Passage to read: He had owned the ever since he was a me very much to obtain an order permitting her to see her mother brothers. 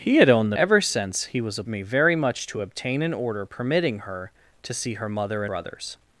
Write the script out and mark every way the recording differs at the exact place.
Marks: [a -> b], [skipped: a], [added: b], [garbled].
He had owned the ever since he was a me very much to obtain an order permitting her to see her mother brothers.